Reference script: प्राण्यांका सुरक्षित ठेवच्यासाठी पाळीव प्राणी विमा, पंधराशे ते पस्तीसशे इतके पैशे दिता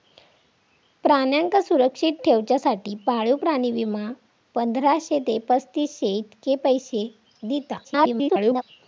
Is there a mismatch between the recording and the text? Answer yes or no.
yes